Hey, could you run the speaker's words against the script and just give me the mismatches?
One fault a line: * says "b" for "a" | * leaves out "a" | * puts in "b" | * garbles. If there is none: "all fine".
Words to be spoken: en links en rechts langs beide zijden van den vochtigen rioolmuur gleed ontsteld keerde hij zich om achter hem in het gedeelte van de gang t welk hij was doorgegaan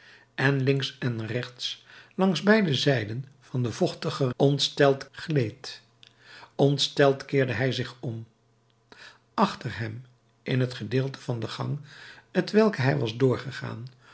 * says "ontsteld" for "rioolmuur"